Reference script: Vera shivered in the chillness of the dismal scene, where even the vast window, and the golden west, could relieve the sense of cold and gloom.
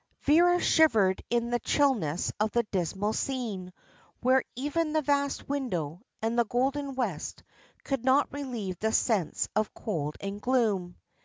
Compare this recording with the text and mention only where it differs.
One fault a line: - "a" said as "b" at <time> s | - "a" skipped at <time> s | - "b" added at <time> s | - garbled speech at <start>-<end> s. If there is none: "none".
- "not" added at 8.0 s